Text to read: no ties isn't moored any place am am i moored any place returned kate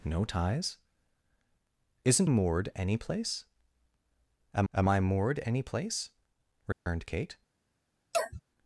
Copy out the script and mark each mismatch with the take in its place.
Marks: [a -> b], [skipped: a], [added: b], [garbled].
no ties isn't moored any place am am i moored any place returned kate